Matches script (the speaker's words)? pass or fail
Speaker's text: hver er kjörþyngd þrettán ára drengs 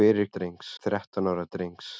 fail